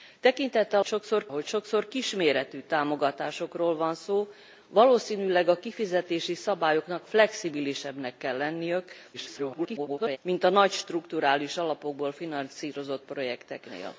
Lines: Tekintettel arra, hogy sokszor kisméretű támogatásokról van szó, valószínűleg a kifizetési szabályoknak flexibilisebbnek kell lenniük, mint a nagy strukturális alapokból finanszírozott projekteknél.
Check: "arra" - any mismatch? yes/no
yes